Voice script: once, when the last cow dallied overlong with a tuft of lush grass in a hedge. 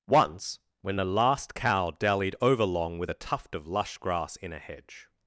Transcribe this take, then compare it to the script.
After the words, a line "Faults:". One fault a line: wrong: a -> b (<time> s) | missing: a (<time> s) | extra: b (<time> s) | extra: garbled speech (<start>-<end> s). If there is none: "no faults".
once, when the last cow dallied overlong with a tuft of lush grass in a hedge.
Faults:
no faults